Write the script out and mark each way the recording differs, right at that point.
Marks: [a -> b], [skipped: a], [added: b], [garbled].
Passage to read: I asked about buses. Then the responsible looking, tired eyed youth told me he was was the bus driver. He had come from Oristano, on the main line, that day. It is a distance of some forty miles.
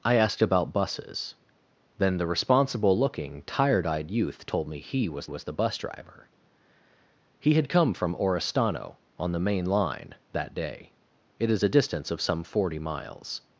I asked about buses. Then the responsible looking, tired eyed youth told me he was was the bus driver. He had come from Oristano, on the main line, that day. It is a distance of some forty miles.